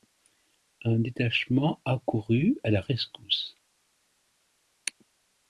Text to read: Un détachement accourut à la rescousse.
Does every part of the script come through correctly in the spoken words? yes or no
yes